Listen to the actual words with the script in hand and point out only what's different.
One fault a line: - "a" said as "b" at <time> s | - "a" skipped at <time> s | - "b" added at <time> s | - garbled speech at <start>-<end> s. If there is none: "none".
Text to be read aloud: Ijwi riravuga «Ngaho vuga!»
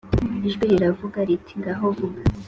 - "riti" added at 1.3 s